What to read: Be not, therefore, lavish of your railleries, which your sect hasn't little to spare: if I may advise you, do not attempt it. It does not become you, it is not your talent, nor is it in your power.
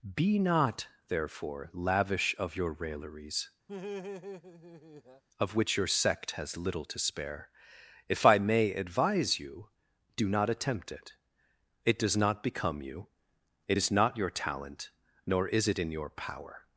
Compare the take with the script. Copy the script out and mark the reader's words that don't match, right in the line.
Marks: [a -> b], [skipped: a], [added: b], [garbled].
Be not, therefore, lavish of your railleries, [added: of] which your sect [hasn't -> has] little to spare: if I may advise you, do not attempt it. It does not become you, it is not your talent, nor is it in your power.